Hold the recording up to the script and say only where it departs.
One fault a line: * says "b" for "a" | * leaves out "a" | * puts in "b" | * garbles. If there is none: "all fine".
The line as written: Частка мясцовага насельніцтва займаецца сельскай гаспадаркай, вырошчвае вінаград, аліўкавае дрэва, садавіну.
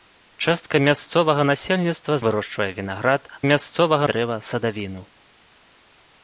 * leaves out "займаецца сельскай гаспадаркай"
* says "мясцовага" for "аліўкавае"